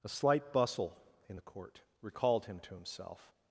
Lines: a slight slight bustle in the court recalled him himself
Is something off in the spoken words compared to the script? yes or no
yes